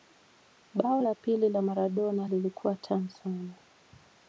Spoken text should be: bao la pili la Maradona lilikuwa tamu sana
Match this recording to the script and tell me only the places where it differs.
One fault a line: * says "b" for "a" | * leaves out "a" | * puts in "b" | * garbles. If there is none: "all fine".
all fine